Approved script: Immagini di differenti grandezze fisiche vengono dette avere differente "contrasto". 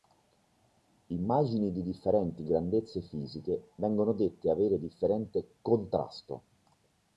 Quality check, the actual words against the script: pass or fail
pass